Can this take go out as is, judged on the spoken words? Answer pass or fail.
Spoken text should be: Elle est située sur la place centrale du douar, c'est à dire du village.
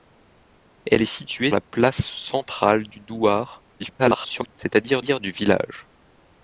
fail